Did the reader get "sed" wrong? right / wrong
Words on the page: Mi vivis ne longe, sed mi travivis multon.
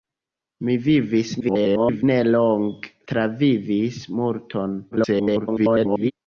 wrong